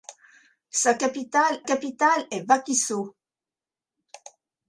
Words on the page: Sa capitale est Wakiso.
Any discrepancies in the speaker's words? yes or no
yes